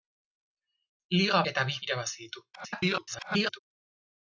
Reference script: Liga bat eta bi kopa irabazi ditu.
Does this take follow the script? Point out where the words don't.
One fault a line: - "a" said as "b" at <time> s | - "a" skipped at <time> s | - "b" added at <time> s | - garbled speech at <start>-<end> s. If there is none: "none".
- "bat" skipped at 1.4 s
- "kopa" skipped at 1.8 s
- garbled speech at 2.5-3.6 s